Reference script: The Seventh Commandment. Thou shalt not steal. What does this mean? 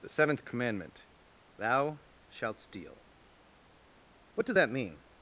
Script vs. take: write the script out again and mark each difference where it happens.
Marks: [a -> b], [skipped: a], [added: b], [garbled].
The Seventh Commandment. Thou shalt [skipped: not] steal. What does [this -> that] mean?